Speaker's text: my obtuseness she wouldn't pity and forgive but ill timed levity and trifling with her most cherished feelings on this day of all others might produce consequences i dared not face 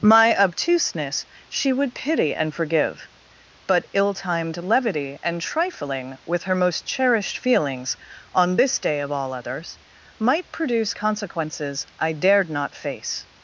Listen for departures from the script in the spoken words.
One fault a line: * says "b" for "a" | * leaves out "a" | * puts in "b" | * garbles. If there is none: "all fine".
* says "would" for "wouldn't"